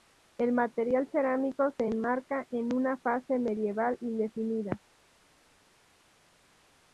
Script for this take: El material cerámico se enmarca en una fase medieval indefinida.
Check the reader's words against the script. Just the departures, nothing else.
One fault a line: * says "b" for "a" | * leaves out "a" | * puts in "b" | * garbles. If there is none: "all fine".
all fine